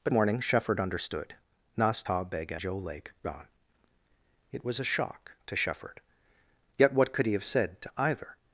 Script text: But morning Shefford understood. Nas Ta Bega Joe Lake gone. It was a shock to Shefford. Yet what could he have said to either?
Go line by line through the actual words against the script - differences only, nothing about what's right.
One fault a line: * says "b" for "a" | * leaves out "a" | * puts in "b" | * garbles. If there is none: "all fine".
all fine